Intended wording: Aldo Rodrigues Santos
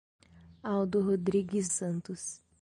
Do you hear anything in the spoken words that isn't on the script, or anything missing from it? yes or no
no